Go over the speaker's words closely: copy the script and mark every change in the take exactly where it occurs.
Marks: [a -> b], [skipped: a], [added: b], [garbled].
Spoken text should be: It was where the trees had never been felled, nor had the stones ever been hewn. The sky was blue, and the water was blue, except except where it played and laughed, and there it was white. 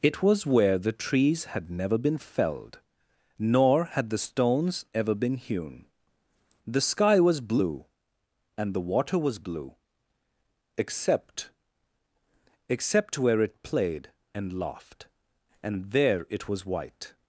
It was where the trees had never been felled, nor had the stones ever been hewn. The sky was blue, and the water was blue, except except where it played and laughed, and there it was white.